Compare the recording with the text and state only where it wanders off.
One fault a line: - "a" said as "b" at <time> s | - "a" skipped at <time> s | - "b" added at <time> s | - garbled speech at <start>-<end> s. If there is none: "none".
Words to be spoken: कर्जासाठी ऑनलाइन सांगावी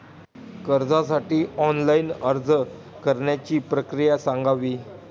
- "अर्ज करण्याची प्रक्रिया" added at 2.2 s